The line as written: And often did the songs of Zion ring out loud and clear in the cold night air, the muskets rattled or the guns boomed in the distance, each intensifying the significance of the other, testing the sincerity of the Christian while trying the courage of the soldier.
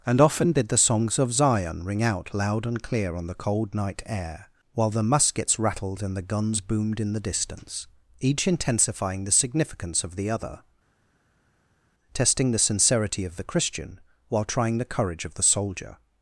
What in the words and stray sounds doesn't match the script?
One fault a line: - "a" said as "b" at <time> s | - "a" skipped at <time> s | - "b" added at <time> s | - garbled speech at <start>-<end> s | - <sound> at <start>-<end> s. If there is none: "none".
- "in" said as "on" at 3.1 s
- "while" added at 4.7 s
- "or" said as "and" at 6.0 s